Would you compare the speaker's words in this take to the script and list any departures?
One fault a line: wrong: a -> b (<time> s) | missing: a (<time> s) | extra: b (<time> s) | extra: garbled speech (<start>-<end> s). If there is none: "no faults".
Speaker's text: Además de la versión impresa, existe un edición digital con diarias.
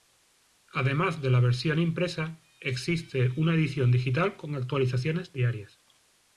wrong: un -> una (3.4 s)
extra: actualizaciones (4.5 s)